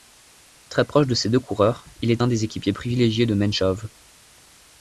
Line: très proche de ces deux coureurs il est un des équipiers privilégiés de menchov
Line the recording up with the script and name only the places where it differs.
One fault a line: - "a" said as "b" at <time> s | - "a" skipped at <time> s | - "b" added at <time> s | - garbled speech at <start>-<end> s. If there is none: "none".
none